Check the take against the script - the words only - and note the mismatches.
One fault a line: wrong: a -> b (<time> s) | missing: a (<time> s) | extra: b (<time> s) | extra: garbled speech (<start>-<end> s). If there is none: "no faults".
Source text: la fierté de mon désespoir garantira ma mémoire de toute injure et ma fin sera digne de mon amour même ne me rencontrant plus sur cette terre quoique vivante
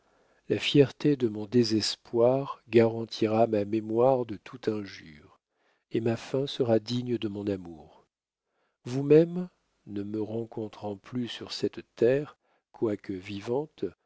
extra: vous (8.8 s)